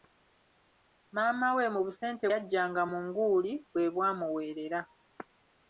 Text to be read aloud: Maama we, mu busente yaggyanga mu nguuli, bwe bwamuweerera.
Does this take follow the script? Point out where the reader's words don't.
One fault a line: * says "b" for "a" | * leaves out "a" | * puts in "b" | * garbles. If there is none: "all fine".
all fine